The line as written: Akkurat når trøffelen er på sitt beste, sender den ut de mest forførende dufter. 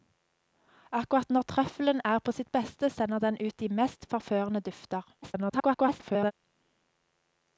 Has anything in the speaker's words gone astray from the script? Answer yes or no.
yes